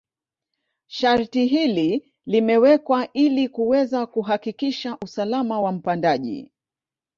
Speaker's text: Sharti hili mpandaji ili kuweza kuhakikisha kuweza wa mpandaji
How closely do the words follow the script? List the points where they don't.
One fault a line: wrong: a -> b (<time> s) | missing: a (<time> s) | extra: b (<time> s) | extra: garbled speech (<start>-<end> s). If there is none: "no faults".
wrong: mpandaji -> limewekwa (2.2 s)
wrong: kuweza -> usalama (5.0 s)